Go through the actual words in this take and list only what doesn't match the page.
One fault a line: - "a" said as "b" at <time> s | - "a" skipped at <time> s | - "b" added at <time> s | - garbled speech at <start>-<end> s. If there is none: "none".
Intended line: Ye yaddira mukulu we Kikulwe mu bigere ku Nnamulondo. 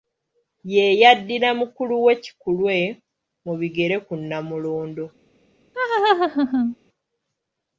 none